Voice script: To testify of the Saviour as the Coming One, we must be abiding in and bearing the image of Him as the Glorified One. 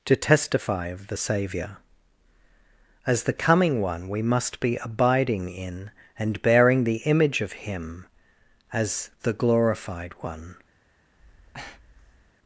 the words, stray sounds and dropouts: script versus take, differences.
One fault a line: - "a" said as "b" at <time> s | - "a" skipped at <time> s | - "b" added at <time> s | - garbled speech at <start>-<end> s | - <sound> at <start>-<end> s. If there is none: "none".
- breath at 11.2-12.3 s